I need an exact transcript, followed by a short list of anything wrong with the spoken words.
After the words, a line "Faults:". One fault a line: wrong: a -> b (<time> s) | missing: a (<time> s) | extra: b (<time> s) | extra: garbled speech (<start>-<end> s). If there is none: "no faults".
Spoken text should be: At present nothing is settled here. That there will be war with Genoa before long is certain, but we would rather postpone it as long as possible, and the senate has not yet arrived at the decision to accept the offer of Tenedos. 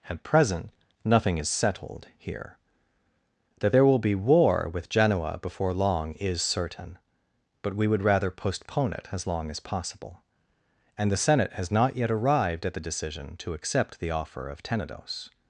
At present nothing is settled here. That there will be war with Genoa before long is certain, but we would rather postpone it as long as possible, and the senate has not yet arrived at the decision to accept the offer of Tenedos.
Faults:
no faults